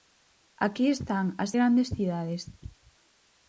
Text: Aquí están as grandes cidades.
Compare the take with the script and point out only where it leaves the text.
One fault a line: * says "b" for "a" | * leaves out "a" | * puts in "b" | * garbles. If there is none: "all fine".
all fine